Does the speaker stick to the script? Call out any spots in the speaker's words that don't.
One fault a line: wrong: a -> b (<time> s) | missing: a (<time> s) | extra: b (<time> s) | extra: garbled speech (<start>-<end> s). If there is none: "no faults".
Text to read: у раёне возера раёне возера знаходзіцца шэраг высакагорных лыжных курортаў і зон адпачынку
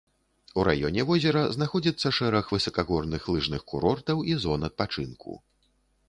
missing: раёне возера (1.4 s)